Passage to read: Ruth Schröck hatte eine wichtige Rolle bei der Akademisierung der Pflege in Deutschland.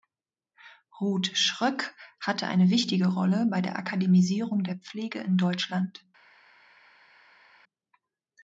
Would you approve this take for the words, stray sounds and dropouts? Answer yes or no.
yes